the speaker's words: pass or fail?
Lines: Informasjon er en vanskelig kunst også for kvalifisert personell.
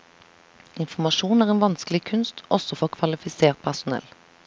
pass